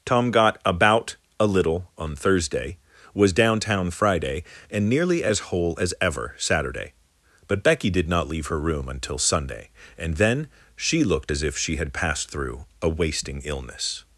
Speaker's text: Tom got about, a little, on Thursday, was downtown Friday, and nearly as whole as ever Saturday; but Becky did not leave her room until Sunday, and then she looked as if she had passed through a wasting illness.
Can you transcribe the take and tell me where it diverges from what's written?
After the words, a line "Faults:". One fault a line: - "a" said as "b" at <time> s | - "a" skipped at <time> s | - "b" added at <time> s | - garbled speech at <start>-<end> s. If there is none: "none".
Tom got about, a little, on Thursday, was downtown Friday, and nearly as whole as ever Saturday; but Becky did not leave her room until Sunday, and then she looked as if she had passed through a wasting illness.
Faults:
none